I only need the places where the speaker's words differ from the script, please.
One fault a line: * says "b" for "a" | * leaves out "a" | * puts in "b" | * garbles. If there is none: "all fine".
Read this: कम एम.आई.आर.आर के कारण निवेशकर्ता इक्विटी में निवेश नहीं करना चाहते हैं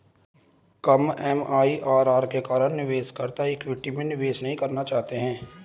all fine